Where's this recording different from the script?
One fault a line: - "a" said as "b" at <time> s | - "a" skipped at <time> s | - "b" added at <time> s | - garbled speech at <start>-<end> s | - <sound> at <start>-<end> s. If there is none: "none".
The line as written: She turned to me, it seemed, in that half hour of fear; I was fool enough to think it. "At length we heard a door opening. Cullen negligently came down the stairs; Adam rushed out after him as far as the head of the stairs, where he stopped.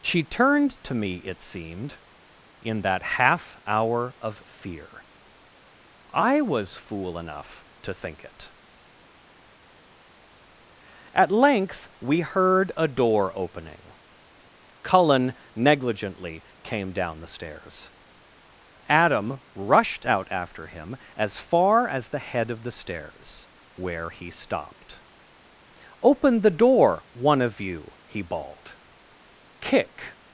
- "Open the door one of you he bawled Kick" added at 26.0 s